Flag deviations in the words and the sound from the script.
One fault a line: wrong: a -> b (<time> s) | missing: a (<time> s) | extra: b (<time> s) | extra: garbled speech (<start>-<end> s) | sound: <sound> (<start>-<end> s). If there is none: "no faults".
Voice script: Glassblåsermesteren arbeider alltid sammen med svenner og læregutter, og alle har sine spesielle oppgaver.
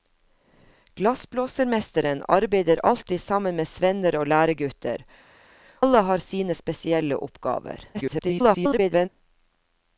missing: og (5.0 s)
extra: garbled speech (7.9-9.1 s)